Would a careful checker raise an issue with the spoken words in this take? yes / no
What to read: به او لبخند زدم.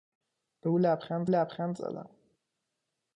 yes